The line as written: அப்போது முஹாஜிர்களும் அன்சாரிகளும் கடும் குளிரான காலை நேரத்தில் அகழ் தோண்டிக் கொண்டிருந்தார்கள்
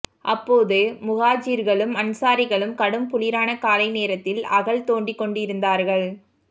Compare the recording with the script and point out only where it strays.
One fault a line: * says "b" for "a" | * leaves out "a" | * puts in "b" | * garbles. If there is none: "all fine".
all fine